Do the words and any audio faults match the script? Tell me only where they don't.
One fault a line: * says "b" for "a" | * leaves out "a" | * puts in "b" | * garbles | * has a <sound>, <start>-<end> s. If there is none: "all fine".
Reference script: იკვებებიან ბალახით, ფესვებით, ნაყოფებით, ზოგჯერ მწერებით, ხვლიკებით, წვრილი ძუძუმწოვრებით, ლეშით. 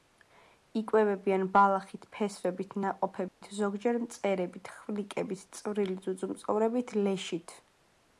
* has a dropout, 3.3-3.4 s